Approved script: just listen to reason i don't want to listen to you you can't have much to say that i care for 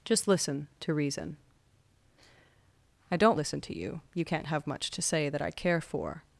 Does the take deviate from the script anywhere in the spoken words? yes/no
yes